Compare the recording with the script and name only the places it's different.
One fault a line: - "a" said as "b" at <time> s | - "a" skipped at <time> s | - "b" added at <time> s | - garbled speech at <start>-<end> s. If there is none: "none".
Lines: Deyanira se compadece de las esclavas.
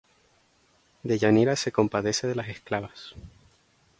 none